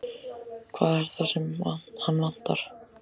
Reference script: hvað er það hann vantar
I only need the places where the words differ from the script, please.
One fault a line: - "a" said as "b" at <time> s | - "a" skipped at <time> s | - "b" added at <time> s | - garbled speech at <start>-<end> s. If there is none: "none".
- "sem" added at 1.3 s